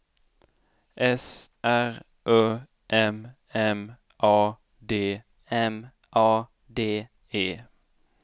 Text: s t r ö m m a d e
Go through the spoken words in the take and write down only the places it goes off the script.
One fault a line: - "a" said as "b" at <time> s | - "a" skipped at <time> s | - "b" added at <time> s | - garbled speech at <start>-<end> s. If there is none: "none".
- "t" skipped at 1.5 s
- "m a d" added at 5.5 s